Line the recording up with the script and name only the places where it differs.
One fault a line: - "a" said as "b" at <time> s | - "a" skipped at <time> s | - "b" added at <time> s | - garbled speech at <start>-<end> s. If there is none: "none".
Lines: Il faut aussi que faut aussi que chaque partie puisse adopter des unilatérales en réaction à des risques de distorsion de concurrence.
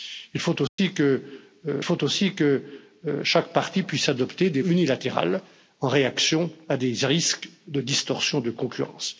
none